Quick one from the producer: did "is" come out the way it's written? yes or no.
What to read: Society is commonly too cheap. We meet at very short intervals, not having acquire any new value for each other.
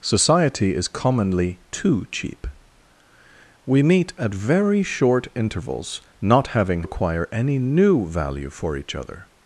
yes